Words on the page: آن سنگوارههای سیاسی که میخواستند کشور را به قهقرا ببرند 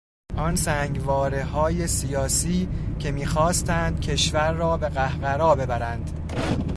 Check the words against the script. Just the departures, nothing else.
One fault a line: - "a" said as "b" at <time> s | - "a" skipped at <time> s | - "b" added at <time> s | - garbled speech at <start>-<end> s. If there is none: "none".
none